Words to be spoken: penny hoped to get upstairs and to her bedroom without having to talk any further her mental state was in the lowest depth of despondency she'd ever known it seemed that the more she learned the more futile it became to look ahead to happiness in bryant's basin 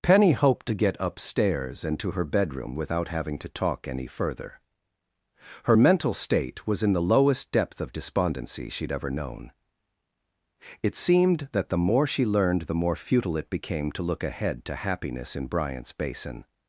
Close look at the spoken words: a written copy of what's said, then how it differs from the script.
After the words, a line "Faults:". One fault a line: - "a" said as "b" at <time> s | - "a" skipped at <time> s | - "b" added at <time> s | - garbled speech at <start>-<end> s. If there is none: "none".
penny hoped to get upstairs and to her bedroom without having to talk any further her mental state was in the lowest depth of despondency she'd ever known it seemed that the more she learned the more futile it became to look ahead to happiness in bryant's basin
Faults:
none